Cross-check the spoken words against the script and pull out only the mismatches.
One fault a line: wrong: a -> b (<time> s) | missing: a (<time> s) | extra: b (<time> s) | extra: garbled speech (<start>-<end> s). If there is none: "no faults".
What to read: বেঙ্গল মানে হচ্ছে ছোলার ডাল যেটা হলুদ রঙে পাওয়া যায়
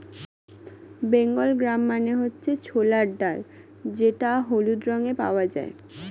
extra: গ্রাম (1.6 s)